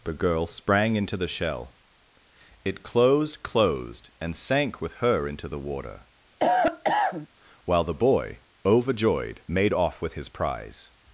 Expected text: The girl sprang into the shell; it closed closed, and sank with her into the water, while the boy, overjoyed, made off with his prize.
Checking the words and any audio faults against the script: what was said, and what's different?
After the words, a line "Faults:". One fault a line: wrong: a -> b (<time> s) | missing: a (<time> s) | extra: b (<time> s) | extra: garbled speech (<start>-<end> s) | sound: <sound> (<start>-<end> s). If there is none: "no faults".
The girl sprang into the shell; it closed closed, and sank with her into the water, while the boy, overjoyed, made off with his prize.
Faults:
sound: cough (6.4-7.3 s)